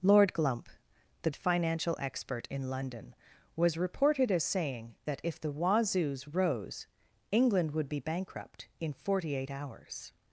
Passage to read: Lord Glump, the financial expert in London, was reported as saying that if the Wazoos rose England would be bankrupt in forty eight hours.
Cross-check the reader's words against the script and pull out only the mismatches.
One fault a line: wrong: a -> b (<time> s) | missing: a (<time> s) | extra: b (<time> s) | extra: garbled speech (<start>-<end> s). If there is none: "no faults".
no faults